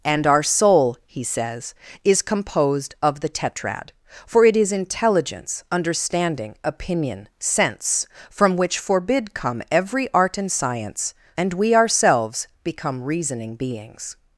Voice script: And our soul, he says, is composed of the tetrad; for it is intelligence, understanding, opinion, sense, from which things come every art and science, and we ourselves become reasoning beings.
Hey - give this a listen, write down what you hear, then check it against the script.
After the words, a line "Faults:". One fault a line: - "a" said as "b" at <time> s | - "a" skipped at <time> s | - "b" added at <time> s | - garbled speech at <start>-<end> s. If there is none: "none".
And our soul, he says, is composed of the tetrad; for it is intelligence, understanding, opinion, sense, from which forbid come every art and science, and we ourselves become reasoning beings.
Faults:
- "things" said as "forbid" at 8.8 s